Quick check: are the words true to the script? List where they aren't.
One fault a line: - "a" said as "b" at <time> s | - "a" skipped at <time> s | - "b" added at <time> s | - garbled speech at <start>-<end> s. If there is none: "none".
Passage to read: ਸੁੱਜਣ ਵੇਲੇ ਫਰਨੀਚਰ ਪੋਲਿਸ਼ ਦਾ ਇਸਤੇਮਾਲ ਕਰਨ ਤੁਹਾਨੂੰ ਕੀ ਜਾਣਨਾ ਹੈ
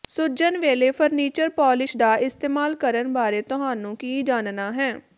- "ਬਾਰੇ" added at 3.1 s